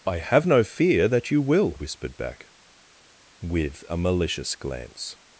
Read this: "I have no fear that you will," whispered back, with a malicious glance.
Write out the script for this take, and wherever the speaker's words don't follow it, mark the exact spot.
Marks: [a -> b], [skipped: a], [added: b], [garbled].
"I have no fear that you will," whispered back, with a malicious glance.